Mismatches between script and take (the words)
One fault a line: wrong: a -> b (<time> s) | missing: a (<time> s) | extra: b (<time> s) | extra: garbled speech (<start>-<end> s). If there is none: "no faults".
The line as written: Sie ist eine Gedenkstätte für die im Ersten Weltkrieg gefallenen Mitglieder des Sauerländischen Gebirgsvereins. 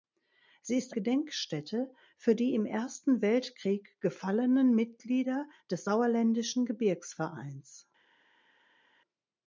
missing: eine (0.9 s)